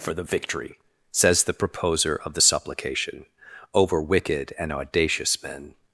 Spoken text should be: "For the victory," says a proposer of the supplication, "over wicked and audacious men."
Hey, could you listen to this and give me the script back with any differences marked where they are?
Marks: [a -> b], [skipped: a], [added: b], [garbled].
"For the victory," says [a -> the] proposer of the supplication, "over wicked and audacious men."